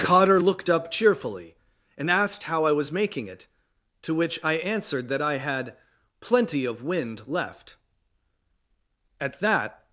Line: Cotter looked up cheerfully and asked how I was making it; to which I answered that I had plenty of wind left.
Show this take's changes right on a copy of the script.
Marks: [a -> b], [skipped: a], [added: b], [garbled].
Cotter looked up cheerfully and asked how I was making it; to which I answered that I had plenty of wind left. [added: At that]